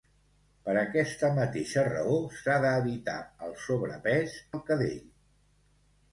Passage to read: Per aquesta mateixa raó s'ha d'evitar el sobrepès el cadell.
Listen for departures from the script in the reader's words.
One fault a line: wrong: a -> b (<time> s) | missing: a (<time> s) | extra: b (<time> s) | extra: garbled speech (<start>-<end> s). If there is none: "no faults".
no faults